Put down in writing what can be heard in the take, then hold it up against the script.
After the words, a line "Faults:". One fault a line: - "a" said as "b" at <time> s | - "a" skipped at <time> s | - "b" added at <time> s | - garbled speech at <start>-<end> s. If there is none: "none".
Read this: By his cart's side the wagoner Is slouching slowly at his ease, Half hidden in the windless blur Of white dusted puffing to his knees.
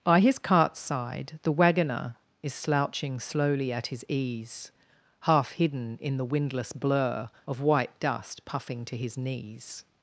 By his cart's side the wagoner Is slouching slowly at his ease, Half hidden in the windless blur Of white dust puffing to his knees.
Faults:
- "dusted" said as "dust" at 8.0 s